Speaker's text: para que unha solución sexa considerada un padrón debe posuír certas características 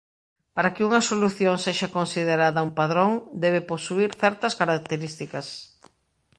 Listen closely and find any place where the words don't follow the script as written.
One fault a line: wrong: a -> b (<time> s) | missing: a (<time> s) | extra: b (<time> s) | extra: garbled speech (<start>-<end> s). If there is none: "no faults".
no faults